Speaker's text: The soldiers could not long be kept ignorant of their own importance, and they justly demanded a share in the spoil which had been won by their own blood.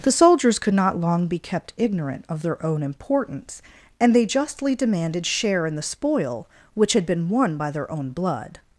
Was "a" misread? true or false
true